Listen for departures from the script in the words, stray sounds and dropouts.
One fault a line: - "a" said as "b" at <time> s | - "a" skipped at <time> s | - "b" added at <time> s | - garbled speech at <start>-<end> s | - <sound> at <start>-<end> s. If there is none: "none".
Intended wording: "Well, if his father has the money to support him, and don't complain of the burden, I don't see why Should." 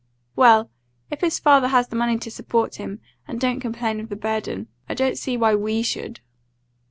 - "WE" added at 5.5 s